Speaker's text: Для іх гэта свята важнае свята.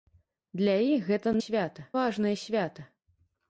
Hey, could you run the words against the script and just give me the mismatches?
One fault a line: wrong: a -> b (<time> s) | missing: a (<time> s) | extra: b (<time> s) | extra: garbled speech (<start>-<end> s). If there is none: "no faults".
no faults